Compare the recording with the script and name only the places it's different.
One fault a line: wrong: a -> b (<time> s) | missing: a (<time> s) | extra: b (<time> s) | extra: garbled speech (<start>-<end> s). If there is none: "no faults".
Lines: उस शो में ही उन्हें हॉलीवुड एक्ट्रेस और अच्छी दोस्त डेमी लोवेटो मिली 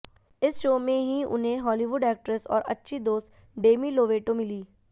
wrong: उस -> इस (0.4 s)